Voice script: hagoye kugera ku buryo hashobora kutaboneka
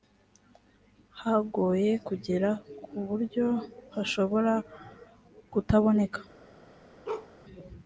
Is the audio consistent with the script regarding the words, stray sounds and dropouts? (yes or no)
no